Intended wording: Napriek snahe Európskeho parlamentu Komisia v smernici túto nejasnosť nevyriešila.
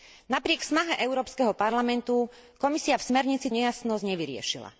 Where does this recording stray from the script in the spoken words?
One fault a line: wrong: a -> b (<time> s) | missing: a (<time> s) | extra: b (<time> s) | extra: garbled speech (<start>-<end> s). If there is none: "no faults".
missing: túto (3.5 s)